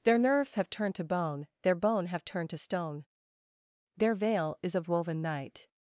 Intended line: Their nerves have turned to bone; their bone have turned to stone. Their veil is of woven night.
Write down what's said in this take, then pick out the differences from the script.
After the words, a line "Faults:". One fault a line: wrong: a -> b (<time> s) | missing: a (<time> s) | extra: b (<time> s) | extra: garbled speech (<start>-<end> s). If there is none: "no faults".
Their nerves have turned to bone; their bone have turned to stone. Their veil is of woven night.
Faults:
no faults